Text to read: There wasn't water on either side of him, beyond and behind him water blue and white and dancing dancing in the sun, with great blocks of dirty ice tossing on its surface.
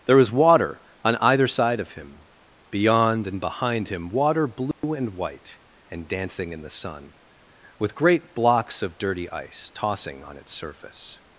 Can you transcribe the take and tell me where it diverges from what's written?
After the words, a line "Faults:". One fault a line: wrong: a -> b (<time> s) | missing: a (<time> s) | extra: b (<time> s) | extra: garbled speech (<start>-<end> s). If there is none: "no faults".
There was water on either side of him, beyond and behind him water blue and white and dancing in the sun, with great blocks of dirty ice tossing on its surface.
Faults:
wrong: wasn't -> was (0.2 s)
missing: dancing (6.5 s)